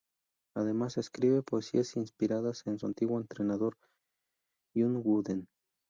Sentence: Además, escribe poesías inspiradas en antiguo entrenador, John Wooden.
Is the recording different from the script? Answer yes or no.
no